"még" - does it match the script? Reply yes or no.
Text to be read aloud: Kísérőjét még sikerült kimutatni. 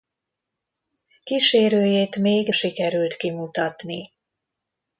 yes